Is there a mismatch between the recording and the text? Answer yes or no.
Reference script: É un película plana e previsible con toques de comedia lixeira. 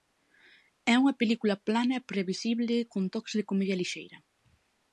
yes